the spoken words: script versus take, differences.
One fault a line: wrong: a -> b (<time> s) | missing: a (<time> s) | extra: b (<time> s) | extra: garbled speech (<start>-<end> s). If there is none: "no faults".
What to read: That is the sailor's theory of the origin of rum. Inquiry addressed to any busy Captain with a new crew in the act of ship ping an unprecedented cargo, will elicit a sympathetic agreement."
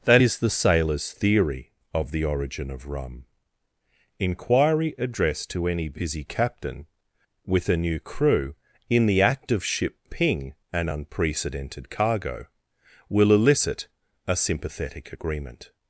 no faults